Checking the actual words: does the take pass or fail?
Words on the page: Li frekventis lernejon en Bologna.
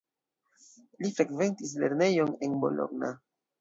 pass